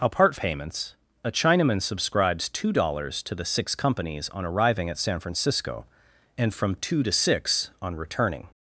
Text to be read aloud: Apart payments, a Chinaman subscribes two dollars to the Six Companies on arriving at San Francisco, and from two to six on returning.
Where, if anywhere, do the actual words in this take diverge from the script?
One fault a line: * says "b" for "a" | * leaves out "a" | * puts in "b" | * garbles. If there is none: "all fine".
all fine